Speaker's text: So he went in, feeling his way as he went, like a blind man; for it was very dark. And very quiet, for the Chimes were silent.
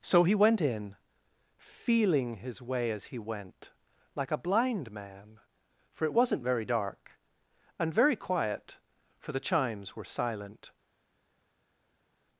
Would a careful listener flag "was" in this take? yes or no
yes